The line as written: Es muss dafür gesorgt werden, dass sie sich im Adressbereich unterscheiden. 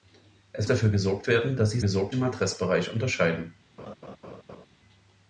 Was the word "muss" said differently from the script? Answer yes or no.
yes